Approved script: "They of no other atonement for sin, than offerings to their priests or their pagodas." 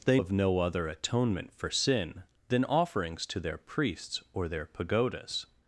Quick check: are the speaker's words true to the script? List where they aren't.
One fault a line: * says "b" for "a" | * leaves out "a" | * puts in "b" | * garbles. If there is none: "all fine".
all fine